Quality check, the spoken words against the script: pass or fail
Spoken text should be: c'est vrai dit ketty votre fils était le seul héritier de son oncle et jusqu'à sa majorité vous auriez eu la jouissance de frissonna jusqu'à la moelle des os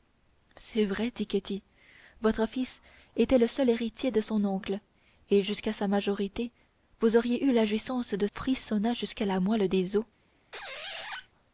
pass